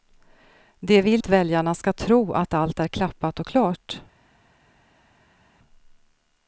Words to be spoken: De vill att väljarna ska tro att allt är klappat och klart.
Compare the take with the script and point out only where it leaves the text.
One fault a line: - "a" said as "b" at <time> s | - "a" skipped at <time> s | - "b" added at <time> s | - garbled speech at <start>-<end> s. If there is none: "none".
none